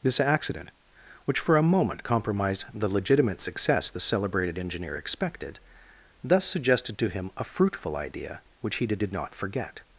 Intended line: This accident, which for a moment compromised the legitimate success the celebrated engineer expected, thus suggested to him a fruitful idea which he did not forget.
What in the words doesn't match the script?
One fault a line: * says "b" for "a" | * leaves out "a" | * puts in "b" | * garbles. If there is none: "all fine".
* puts in "did"